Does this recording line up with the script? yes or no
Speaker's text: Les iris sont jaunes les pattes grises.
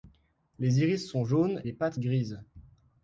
yes